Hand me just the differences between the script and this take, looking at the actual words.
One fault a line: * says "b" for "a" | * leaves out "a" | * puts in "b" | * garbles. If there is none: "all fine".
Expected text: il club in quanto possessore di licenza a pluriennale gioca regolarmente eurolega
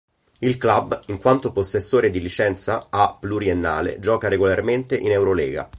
* puts in "in"